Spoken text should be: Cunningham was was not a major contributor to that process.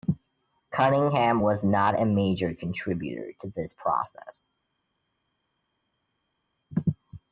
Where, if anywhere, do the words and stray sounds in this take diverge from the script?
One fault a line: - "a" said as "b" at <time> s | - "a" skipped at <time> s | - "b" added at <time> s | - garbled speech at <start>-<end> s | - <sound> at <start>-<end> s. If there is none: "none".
- "was" skipped at 1.6 s
- "that" said as "this" at 3.5 s